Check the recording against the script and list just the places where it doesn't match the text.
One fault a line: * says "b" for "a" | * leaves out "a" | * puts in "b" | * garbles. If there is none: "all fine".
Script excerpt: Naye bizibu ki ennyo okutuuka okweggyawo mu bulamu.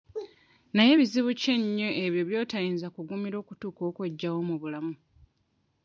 * puts in "ebyo by'otayinza kugumira"